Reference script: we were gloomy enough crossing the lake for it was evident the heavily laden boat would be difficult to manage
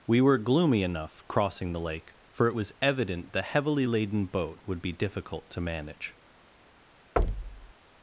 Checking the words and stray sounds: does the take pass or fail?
fail